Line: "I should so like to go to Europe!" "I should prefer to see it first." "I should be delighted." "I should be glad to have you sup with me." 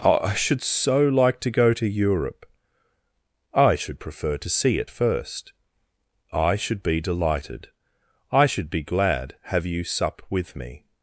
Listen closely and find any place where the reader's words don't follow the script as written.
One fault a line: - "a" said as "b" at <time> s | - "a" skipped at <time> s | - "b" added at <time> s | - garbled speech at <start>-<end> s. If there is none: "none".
- "to" skipped at 9.3 s